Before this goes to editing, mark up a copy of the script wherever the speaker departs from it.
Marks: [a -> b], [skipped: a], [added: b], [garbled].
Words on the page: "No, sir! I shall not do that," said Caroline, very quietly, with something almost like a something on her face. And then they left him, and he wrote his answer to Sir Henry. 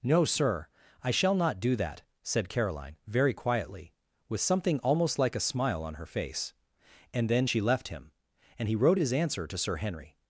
"No, sir! I shall not do that," said Caroline, very quietly, with something almost like a [something -> smile] on her face. And then [they -> she] left him, and he wrote his answer to Sir Henry.